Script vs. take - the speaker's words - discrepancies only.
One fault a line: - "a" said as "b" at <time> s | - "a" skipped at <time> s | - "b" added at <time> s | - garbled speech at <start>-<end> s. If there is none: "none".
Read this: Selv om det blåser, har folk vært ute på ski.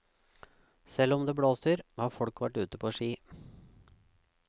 none